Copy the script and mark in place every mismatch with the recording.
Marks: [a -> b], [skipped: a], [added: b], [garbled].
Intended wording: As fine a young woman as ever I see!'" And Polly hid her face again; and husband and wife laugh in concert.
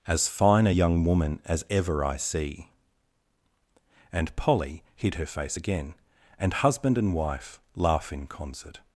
As fine a young woman as ever I see!'" And Polly hid her face again; and husband and wife laugh in concert.